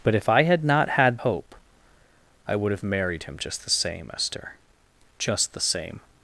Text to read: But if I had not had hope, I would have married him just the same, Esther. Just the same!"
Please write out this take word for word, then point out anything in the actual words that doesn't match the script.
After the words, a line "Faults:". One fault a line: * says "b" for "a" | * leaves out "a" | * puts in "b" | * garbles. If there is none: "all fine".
But if I had not had hope, I would have married him just the same, Esther. Just the same!"
Faults:
all fine